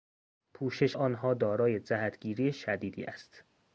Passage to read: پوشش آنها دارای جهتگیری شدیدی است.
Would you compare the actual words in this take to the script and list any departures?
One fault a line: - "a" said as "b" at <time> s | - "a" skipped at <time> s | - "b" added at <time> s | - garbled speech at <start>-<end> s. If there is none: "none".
none